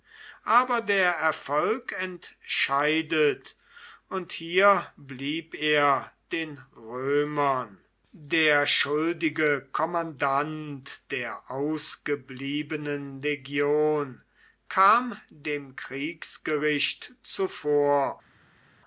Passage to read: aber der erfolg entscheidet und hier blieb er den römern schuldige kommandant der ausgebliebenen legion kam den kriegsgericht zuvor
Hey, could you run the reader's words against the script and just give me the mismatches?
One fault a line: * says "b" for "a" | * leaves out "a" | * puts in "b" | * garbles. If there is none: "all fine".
* puts in "der"
* says "dem" for "den"